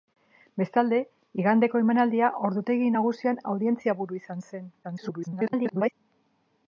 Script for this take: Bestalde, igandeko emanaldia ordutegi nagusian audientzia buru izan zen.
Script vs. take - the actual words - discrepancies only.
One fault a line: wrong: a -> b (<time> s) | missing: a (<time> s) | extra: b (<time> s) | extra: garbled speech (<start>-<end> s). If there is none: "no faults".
extra: garbled speech (4.8-5.9 s)